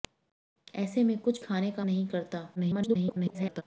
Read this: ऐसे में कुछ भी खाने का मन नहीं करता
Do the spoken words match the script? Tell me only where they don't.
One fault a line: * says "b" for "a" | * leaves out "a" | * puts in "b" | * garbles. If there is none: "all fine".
* leaves out "भी"
* leaves out "मन"
* garbles